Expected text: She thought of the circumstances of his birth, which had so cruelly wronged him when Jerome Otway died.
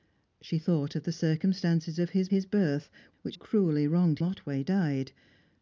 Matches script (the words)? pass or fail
fail